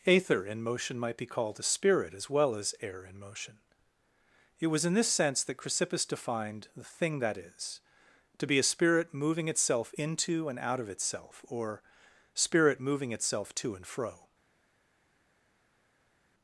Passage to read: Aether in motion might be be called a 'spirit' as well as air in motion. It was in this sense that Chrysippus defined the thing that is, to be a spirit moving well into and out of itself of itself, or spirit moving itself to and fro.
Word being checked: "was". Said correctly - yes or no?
yes